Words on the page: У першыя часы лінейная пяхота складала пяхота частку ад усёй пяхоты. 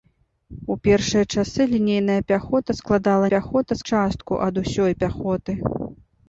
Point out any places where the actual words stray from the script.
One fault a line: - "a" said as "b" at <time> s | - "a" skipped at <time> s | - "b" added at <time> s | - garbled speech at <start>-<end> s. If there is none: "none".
none